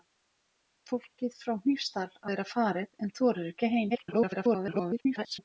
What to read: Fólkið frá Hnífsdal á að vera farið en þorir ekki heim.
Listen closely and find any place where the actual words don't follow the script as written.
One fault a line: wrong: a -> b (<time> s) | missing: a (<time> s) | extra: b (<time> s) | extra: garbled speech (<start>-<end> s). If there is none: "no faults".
missing: að (2.3 s)
extra: garbled speech (3.9-5.4 s)